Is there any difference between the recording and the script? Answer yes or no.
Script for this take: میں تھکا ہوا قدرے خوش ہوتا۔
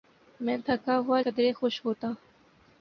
no